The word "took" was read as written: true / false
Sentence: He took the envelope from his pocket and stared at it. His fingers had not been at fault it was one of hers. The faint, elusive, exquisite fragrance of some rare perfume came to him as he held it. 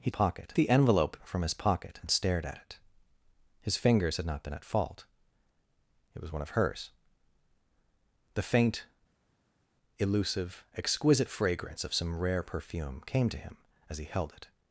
false